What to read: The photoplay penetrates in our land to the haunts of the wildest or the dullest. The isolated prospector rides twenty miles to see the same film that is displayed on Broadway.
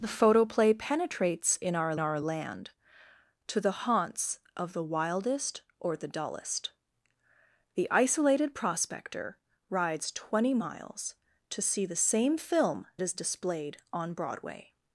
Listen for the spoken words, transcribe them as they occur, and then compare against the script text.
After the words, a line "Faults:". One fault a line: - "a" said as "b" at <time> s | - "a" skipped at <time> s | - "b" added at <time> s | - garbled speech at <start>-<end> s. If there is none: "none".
The photoplay penetrates in our our land to the haunts of the wildest or the dullest. The isolated prospector rides twenty miles to see the same film is displayed on Broadway.
Faults:
- "our" added at 2.0 s
- "that" skipped at 12.9 s